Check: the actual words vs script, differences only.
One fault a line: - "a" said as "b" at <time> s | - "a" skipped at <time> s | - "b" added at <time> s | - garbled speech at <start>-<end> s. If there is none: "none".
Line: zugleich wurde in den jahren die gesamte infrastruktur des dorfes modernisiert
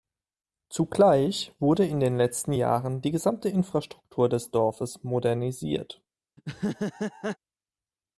- "letzten" added at 2.2 s